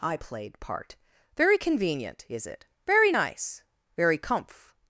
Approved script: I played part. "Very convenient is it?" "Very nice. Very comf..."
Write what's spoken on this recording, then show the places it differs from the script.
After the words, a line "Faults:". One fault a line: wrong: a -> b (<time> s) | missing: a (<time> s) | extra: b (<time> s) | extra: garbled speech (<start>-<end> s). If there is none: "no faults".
I played part. "Very convenient is it?" "Very nice. Very comf..."
Faults:
no faults